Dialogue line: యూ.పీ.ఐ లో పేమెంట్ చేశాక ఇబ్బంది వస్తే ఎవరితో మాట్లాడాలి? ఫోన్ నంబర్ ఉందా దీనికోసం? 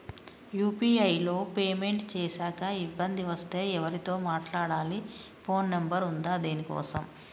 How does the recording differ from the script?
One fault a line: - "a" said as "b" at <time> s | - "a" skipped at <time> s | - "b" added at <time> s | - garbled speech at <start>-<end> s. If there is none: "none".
none